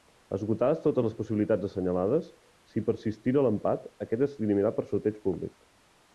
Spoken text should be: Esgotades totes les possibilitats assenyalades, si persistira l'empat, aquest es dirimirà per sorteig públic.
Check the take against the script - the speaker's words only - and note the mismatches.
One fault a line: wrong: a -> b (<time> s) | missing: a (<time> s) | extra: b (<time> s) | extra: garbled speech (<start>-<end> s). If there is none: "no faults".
no faults